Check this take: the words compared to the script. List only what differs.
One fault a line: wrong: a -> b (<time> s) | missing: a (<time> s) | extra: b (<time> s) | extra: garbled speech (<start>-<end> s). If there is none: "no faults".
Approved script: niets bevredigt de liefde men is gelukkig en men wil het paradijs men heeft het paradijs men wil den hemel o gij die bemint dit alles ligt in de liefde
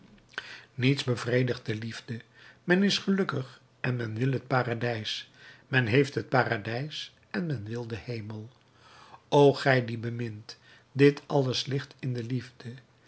extra: en (7.3 s)